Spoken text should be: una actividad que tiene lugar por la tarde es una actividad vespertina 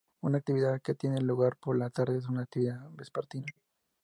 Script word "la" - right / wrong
right